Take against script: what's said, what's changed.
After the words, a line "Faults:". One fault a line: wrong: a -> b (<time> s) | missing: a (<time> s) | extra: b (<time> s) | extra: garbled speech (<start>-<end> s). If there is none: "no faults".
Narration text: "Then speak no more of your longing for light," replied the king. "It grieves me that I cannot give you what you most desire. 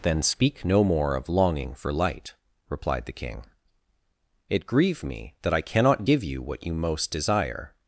"Then speak no more of longing for light," replied the king. "It grieve me that I cannot give you what you most desire.
Faults:
missing: your (1.3 s)
wrong: grieves -> grieve (4.7 s)